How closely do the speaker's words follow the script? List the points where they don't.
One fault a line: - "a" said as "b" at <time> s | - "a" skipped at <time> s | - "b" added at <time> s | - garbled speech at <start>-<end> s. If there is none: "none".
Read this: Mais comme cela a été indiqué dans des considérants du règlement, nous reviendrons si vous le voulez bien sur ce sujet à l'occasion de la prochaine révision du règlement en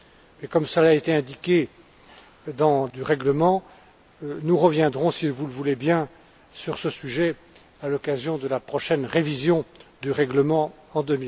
- "des considérants" skipped at 2.9 s